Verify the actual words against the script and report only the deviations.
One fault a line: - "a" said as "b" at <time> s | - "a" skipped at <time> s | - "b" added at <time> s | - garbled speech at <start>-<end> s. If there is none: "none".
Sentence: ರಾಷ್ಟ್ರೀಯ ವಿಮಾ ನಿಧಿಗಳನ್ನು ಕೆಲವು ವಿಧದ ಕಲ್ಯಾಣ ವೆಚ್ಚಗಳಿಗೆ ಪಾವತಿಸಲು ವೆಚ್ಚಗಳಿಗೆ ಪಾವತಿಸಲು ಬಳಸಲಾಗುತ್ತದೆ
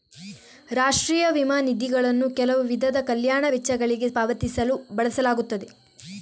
- "ವೆಚ್ಚಗಳಿಗೆ ಪಾವತಿಸಲು" skipped at 4.8 s